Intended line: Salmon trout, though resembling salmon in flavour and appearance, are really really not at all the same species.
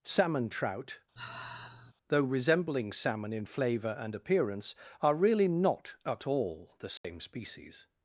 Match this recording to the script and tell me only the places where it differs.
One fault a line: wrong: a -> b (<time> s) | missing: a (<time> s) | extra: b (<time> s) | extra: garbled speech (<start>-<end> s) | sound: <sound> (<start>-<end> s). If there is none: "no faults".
sound: sigh (1.2-1.9 s)
missing: really (5.5 s)
sound: dropout (7.0-7.0 s)